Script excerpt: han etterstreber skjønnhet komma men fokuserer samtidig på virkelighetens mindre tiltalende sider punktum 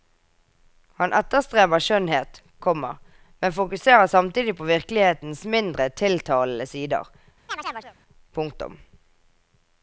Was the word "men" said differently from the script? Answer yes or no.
no